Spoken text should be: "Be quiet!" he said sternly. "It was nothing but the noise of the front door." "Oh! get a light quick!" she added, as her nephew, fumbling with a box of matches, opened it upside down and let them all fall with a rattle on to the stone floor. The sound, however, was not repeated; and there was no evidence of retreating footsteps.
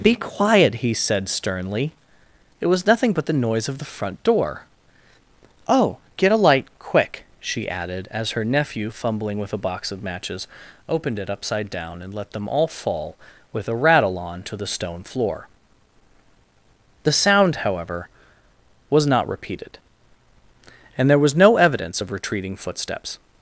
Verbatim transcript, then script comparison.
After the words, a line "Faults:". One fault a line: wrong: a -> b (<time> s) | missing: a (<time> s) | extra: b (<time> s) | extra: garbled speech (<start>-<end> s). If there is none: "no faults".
"Be quiet!" he said sternly. "It was nothing but the noise of the front door." "Oh! get a light quick!" she added, as her nephew, fumbling with a box of matches, opened it upside down and let them all fall with a rattle on to the stone floor. The sound, however, was not repeated; and there was no evidence of retreating footsteps.
Faults:
no faults